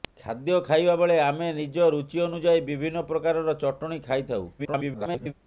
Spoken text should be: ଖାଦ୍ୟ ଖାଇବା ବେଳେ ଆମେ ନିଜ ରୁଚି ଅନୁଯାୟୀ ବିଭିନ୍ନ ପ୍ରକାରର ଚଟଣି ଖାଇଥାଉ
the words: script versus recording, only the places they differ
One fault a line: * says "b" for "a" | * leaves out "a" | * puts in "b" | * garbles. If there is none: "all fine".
* garbles